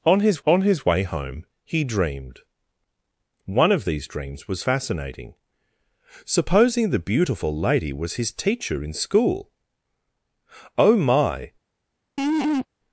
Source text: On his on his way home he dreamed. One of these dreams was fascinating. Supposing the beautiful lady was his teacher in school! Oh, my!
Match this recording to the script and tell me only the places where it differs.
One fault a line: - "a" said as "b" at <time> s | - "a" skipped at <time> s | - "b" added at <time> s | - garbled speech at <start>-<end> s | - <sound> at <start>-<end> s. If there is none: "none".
- laugh at 12.2-12.7 s